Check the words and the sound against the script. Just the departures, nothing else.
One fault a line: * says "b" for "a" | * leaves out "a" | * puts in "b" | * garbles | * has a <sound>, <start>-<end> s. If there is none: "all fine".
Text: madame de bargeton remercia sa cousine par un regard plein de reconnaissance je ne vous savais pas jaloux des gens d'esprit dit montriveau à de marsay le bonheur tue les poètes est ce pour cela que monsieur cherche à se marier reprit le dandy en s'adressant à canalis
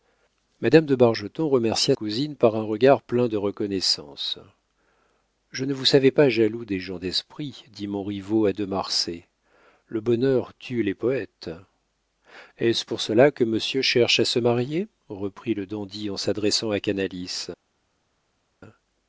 * leaves out "sa"